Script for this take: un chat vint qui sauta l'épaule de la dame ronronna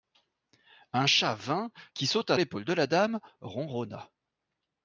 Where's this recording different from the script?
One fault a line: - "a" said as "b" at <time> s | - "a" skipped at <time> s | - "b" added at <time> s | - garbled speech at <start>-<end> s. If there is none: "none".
none